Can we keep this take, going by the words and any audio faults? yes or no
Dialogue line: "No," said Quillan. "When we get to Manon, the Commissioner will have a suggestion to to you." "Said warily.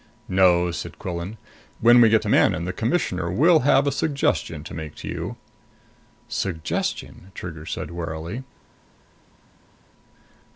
no